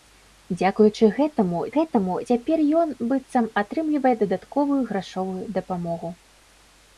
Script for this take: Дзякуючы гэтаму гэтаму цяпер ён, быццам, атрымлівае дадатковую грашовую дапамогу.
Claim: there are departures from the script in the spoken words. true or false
false